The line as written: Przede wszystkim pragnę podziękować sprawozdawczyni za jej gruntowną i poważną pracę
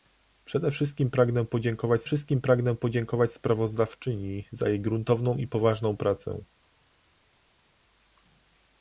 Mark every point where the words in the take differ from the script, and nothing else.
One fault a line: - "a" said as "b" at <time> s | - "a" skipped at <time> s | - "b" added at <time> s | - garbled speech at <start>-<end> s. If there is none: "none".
- "wszystkim pragnę podziękować" added at 2.0 s